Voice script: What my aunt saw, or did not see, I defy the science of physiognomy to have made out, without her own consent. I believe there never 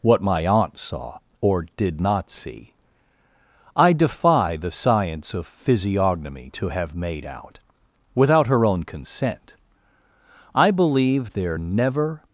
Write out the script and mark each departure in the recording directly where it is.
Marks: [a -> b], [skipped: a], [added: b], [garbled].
What my aunt saw, or did not see, I defy the science of physiognomy to have made out, without her own consent. I believe there never